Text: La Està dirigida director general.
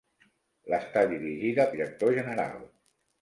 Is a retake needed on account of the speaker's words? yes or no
no